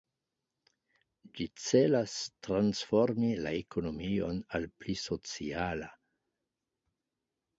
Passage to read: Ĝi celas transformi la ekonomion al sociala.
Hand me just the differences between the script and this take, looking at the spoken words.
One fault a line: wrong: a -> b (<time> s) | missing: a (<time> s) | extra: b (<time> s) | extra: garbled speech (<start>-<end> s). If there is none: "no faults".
extra: pli (4.8 s)